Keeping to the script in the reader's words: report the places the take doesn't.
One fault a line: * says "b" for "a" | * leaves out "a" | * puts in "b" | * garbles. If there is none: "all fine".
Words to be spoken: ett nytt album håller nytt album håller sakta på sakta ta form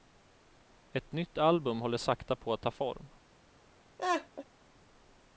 * leaves out "nytt album håller"
* says "att" for "sakta"